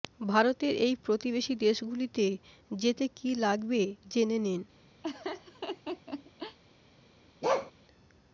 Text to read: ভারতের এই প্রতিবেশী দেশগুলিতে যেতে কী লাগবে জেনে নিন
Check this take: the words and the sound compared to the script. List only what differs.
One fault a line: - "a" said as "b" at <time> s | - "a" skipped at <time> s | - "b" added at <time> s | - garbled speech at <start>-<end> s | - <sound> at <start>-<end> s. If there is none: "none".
- laugh at 5.0-6.6 s
- bark at 7.4-7.7 s